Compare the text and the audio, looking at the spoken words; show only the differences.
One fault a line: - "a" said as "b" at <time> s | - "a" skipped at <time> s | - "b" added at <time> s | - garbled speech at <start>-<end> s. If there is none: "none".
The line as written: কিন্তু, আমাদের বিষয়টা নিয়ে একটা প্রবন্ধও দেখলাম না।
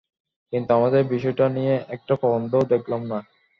none